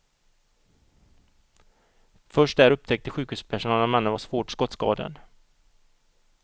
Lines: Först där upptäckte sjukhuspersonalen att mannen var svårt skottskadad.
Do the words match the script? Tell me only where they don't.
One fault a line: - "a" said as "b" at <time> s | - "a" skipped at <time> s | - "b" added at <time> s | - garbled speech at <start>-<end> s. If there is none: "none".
none